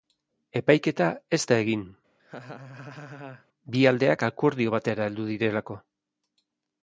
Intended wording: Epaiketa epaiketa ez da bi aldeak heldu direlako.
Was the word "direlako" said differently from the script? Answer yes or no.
no